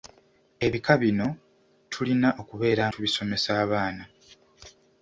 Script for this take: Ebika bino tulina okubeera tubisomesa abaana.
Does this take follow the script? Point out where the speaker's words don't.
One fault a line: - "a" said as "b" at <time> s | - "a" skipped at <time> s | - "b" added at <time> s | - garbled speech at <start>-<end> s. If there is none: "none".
none